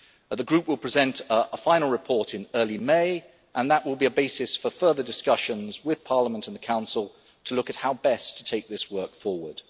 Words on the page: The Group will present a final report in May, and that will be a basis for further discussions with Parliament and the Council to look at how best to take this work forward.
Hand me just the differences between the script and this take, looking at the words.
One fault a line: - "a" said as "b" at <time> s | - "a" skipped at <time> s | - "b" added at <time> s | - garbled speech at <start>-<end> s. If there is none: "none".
- "early" added at 2.5 s